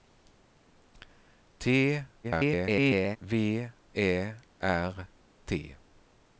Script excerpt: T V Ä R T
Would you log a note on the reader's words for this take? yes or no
yes